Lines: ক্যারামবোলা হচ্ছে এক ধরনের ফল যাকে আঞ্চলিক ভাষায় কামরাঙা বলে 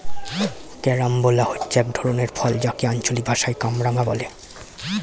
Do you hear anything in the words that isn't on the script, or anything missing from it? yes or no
no